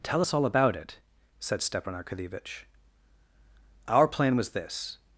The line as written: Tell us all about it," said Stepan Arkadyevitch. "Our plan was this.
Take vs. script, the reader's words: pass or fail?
pass